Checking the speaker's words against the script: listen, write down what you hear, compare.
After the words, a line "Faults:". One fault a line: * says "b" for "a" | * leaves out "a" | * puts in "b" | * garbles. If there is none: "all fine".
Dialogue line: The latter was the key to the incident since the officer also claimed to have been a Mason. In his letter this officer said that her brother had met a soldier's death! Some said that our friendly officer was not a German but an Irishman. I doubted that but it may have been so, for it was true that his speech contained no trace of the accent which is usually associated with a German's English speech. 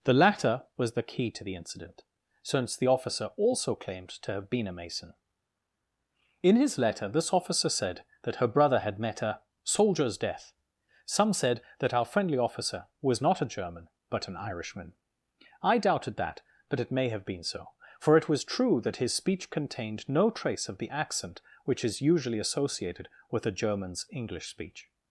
The latter was the key to the incident since the officer also claimed to have been a Mason. In his letter this officer said that her brother had met a soldier's death! Some said that our friendly officer was not a German but an Irishman. I doubted that but it may have been so, for it was true that his speech contained no trace of the accent which is usually associated with a German's English speech.
Faults:
all fine